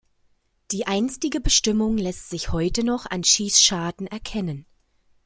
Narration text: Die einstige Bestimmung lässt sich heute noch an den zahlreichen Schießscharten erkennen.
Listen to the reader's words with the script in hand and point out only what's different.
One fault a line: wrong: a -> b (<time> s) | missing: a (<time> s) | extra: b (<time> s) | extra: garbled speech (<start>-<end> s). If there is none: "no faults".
missing: den zahlreichen (3.2 s)